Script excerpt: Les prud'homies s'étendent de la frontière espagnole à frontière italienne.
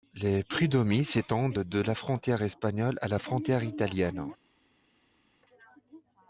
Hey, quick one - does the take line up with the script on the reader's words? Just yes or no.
no